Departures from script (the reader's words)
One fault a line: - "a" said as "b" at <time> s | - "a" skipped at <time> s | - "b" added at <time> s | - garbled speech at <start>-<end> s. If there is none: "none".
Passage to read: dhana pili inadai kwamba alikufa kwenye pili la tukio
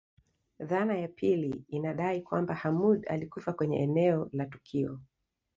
- "ya" added at 1.0 s
- "hamoud" added at 2.5 s
- "pili" said as "eneo" at 3.8 s